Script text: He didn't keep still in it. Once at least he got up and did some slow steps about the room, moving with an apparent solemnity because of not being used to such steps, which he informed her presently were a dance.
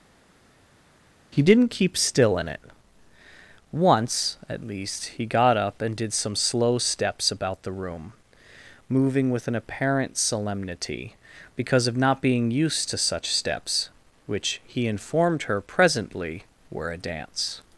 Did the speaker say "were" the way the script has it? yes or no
yes